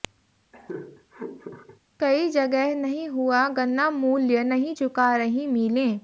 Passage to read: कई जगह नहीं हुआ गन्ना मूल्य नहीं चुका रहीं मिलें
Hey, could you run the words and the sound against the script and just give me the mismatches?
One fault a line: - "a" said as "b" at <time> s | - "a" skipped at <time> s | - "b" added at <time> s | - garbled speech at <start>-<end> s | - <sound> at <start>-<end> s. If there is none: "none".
- laugh at 0.5-1.8 s